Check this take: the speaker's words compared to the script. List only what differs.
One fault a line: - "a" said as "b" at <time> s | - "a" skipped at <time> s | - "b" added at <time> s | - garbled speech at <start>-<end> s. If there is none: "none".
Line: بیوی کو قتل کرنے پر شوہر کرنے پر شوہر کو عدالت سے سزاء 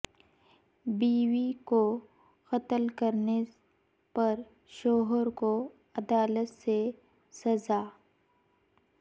- "کرنے پر شوہر" skipped at 5.3 s